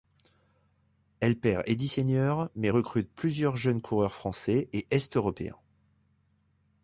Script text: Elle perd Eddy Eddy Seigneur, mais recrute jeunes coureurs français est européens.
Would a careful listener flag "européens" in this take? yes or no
no